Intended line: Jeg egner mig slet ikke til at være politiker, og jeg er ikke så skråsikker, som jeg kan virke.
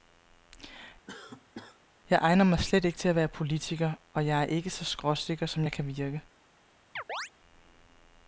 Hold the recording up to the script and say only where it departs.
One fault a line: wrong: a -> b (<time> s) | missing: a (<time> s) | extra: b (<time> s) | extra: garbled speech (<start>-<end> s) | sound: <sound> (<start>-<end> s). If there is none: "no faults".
sound: cough (1.1-1.8 s)
sound: chirp (7.0-7.3 s)